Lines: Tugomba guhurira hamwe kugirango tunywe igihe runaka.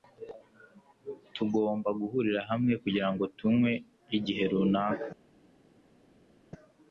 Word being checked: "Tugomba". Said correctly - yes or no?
yes